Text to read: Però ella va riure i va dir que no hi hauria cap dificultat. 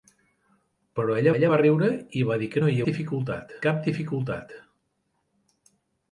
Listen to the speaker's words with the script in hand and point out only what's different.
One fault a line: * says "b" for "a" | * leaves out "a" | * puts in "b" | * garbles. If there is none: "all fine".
* puts in "ella"
* says "dificultat" for "hauria"